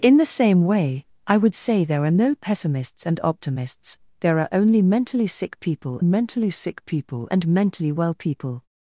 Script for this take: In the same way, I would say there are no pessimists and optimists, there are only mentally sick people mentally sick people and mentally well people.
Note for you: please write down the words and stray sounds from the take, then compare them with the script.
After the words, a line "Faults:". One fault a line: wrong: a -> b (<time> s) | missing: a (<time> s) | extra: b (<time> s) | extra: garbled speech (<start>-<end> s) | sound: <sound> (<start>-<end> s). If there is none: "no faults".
In the same way, I would say there are no pessimists and optimists, there are only mentally sick people mentally sick people and mentally well people.
Faults:
no faults